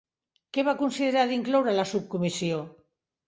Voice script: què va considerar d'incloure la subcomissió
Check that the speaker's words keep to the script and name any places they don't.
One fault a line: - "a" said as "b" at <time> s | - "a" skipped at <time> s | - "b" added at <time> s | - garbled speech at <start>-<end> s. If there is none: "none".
none